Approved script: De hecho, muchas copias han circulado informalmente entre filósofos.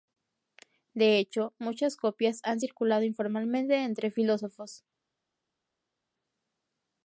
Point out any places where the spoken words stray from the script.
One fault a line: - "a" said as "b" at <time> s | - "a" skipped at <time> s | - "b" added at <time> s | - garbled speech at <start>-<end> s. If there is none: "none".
none